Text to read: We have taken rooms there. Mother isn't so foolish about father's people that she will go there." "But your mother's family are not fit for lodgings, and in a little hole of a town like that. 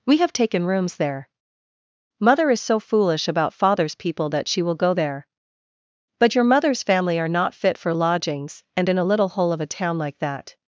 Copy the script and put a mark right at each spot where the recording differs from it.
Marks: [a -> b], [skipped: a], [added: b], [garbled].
We have taken rooms there. Mother [isn't -> is] so foolish about father's people that she will go there." "But your mother's family are not fit for lodgings, and in a little hole of a town like that.